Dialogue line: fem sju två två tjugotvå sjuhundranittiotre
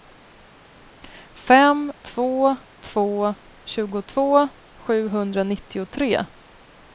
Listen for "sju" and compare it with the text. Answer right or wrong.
wrong